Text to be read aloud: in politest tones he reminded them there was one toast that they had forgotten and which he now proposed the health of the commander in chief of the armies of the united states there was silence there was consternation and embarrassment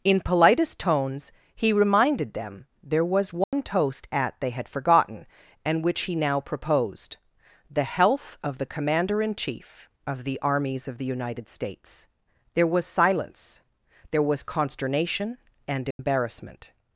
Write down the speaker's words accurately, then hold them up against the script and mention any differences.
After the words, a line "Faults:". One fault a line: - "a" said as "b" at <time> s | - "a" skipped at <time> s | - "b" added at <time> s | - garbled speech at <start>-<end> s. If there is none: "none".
in politest tones he reminded them there was one toast at they had forgotten and which he now proposed the health of the commander in chief of the armies of the united states there was silence there was consternation and embarrassment
Faults:
- "that" said as "at" at 4.1 s